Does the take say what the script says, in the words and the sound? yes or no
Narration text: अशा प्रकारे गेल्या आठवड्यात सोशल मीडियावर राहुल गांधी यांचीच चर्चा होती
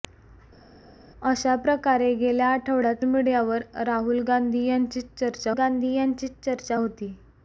no